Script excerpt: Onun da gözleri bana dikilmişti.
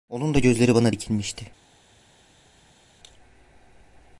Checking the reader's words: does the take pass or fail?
pass